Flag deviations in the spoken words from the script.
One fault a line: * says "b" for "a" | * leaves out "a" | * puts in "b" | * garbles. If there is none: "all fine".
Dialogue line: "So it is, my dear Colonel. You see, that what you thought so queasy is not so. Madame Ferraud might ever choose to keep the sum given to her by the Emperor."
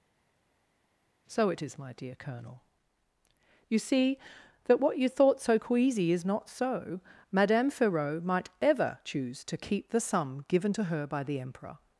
all fine